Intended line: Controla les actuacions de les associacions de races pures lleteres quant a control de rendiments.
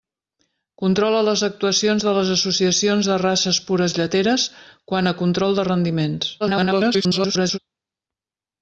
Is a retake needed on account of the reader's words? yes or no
yes